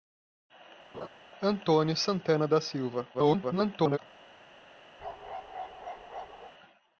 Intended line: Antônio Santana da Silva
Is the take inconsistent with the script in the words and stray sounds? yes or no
yes